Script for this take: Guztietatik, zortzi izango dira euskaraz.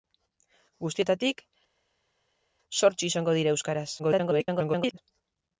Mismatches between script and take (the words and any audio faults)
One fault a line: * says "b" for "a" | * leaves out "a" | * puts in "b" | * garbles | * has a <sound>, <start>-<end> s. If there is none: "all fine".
* garbles